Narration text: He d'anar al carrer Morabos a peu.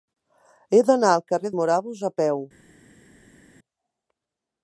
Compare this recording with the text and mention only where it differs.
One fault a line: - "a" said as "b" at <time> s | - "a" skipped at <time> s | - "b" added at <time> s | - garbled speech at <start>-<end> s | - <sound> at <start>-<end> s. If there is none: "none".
none